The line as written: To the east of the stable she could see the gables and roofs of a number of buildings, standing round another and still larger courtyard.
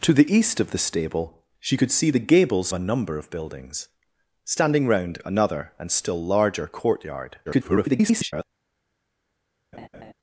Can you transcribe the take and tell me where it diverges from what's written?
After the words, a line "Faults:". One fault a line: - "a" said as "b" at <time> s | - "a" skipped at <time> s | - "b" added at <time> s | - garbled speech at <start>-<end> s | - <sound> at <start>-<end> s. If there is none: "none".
To the east of the stable she could see the gables a number of buildings, standing round another and still larger courtyard. [garbled]
Faults:
- "and roofs of" skipped at 2.7 s
- garbled speech at 7.5-8.4 s
- laugh at 9.7-10.1 s